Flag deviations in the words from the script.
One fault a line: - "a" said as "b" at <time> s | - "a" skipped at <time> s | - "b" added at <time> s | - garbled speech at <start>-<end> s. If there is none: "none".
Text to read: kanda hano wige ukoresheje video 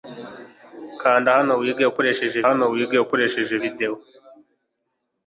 - "hano wige ukoresheje" added at 2.5 s